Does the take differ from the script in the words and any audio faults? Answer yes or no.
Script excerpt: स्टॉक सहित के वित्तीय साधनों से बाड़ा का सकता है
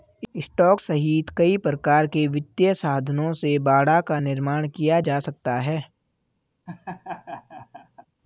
yes